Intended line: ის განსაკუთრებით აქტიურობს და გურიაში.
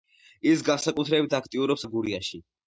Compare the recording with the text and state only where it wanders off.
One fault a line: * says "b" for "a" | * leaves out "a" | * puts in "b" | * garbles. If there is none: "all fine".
all fine